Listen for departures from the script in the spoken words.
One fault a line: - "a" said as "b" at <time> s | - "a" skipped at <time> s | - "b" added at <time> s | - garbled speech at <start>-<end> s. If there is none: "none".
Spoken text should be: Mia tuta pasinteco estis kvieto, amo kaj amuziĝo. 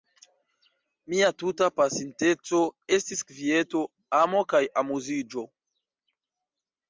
none